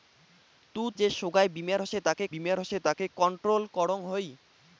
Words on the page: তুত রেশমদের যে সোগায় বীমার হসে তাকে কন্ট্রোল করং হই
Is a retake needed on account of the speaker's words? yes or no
yes